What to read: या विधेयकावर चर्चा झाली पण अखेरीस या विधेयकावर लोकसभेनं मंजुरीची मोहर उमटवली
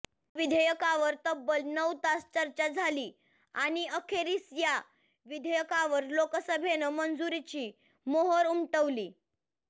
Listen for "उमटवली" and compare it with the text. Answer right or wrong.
right